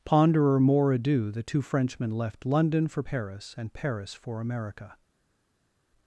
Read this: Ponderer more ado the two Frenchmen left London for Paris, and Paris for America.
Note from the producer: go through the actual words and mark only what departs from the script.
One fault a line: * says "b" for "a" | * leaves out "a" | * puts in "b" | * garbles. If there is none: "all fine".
all fine